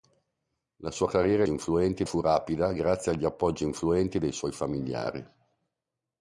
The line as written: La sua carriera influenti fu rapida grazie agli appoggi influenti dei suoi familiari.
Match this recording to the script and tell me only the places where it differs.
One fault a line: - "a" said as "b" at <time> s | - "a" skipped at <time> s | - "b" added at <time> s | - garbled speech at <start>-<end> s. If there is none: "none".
none